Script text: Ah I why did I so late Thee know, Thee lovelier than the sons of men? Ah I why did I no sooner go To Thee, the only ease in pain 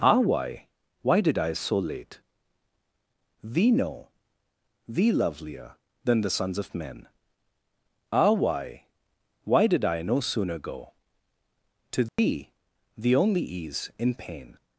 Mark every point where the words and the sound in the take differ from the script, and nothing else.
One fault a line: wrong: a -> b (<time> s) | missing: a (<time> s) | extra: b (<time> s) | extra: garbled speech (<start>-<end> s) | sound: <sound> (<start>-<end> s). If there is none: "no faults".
wrong: I -> why (0.2 s)
wrong: I -> why (8.3 s)
sound: dropout (12.1-12.2 s)